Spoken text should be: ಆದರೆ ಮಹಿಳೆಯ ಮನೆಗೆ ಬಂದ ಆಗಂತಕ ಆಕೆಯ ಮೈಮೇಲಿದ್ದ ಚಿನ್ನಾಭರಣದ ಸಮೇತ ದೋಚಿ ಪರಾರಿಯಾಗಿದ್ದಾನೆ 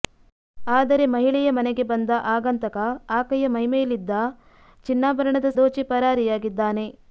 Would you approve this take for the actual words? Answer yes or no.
no